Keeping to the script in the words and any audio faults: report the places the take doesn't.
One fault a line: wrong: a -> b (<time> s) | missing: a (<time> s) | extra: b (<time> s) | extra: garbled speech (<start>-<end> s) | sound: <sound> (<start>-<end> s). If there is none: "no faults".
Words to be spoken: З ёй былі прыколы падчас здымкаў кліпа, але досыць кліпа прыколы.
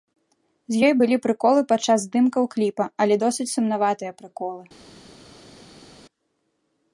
wrong: кліпа -> сумнаватыя (3.6 s)